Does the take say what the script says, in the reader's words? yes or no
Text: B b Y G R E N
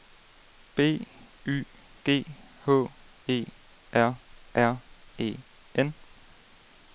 no